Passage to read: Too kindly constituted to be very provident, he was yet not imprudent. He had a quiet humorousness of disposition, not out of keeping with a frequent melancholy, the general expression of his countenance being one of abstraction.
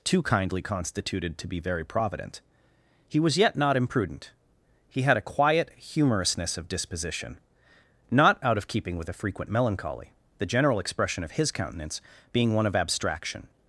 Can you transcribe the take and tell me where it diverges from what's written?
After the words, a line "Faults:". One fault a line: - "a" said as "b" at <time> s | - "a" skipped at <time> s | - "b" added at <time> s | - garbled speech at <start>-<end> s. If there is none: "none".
Too kindly constituted to be very provident, he was yet not imprudent. He had a quiet humorousness of disposition, not out of keeping with a frequent melancholy, the general expression of his countenance being one of abstraction.
Faults:
none